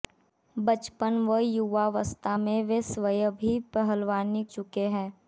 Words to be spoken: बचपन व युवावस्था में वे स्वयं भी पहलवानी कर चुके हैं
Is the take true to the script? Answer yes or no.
no